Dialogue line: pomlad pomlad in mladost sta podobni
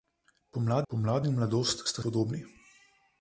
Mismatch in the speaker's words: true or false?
false